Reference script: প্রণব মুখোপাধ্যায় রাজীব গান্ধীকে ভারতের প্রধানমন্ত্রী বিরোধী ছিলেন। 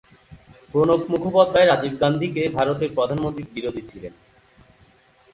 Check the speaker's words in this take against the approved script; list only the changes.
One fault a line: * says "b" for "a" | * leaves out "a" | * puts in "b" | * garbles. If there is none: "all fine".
all fine